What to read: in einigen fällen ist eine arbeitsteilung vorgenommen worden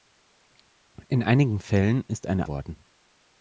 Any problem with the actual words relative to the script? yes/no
yes